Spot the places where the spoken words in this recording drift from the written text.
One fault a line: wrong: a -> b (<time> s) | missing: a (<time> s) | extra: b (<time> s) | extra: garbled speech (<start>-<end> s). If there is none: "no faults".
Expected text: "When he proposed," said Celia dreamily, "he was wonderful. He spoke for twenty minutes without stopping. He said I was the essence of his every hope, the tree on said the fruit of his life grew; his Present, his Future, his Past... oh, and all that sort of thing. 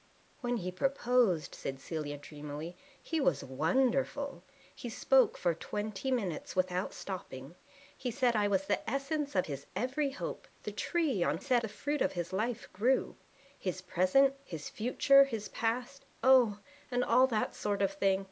no faults